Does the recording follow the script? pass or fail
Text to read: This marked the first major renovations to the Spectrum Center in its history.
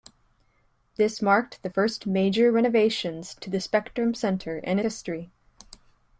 fail